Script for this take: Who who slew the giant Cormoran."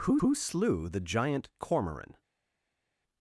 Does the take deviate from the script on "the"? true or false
false